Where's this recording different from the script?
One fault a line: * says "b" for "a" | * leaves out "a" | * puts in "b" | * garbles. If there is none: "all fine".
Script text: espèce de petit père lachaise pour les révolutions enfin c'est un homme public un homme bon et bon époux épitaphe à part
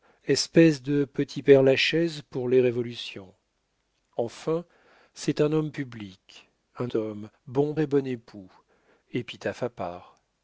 all fine